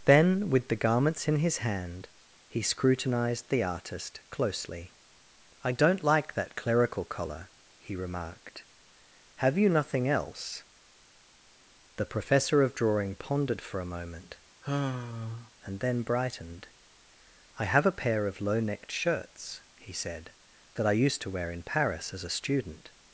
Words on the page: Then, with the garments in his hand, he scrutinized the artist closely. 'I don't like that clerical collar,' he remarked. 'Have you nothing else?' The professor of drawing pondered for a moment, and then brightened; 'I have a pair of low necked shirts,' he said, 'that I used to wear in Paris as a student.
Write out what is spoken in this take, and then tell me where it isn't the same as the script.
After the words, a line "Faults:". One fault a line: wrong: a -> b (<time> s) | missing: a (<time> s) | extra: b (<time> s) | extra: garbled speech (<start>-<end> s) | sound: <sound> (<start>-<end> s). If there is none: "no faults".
Then, with the garments in his hand, he scrutinized the artist closely. 'I don't like that clerical collar,' he remarked. 'Have you nothing else?' The professor of drawing pondered for a moment, and then brightened; 'I have a pair of low necked shirts,' he said, 'that I used to wear in Paris as a student.
Faults:
sound: sigh (14.6-15.5 s)